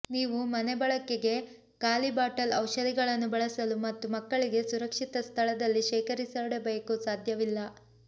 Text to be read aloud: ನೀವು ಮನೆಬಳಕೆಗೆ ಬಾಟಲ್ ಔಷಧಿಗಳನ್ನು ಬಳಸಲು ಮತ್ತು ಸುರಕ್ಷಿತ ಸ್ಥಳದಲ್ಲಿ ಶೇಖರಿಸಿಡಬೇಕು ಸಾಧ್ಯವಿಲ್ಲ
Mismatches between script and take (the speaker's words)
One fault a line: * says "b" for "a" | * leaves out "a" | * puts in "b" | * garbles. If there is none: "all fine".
* puts in "ಖಾಲಿ"
* puts in "ಮಕ್ಕಳಿಗೆ"